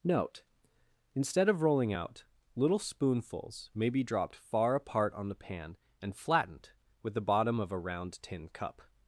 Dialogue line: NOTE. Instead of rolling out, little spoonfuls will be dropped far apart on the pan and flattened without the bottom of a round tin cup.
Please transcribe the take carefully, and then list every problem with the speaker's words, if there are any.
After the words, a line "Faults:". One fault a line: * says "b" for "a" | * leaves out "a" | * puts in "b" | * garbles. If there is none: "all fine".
NOTE. Instead of rolling out, little spoonfuls may be dropped far apart on the pan and flattened with the bottom of a round tin cup.
Faults:
* says "may" for "will"
* says "with" for "without"